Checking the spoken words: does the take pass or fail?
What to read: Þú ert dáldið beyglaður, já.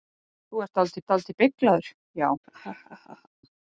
fail